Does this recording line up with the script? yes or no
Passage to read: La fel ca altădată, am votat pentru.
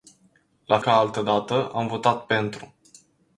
no